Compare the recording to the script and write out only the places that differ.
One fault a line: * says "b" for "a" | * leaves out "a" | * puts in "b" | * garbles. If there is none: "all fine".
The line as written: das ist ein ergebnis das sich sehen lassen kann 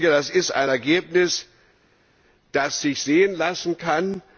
all fine